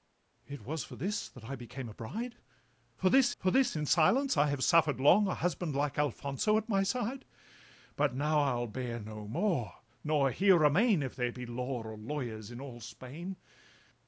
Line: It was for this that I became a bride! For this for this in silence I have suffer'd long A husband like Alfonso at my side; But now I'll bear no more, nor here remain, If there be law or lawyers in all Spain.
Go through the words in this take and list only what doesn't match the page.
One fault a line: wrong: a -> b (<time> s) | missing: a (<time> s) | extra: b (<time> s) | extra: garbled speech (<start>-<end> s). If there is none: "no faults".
no faults